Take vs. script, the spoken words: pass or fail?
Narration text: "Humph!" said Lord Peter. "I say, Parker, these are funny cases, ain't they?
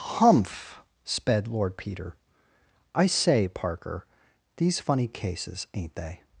fail